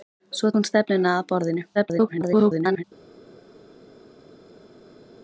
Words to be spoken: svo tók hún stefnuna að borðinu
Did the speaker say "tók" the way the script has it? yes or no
no